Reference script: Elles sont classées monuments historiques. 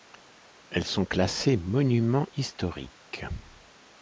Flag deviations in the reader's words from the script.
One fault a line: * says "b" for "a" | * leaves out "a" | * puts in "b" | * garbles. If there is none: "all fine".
all fine